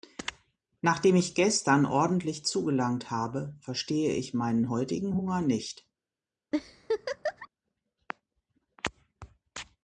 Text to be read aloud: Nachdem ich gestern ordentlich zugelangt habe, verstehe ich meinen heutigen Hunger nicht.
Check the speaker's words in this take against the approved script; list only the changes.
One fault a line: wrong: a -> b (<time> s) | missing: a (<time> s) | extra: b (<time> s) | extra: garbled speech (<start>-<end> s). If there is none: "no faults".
no faults